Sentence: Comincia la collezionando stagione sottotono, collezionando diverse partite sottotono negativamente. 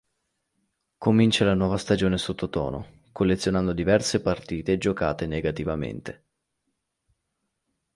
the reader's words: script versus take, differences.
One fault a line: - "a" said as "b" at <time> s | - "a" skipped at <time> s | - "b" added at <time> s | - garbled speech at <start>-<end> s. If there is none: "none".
- "collezionando" said as "nuova" at 1.5 s
- "sottotono" said as "giocate" at 4.8 s